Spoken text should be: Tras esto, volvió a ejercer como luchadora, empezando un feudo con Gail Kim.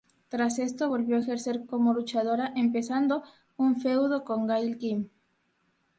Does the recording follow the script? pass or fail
pass